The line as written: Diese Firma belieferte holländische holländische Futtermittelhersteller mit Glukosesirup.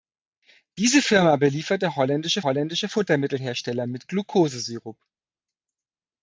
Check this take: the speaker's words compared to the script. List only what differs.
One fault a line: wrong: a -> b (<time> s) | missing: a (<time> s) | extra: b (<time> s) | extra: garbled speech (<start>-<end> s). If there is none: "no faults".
no faults